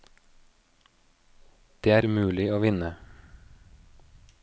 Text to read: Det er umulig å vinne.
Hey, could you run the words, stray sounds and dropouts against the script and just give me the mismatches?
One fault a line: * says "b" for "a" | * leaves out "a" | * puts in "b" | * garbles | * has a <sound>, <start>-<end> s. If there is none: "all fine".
all fine